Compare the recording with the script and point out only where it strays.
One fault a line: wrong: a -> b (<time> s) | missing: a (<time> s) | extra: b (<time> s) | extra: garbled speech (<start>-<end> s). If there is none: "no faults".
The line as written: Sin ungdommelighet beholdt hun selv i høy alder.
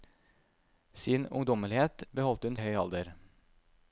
missing: selv (2.6 s)